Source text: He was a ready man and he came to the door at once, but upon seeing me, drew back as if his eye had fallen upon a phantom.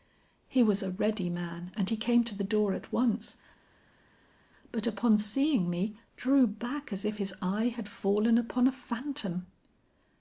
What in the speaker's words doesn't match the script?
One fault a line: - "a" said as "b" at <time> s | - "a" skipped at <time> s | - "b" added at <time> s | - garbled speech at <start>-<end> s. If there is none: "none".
none